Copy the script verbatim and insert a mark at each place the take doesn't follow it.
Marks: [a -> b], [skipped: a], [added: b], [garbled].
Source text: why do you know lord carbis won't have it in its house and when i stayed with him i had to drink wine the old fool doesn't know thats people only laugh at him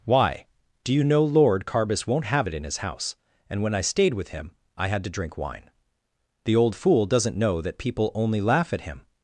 why do you know lord carbis won't have it in [its -> his] house and when i stayed with him i had to drink wine the old fool doesn't know [thats -> that] people only laugh at him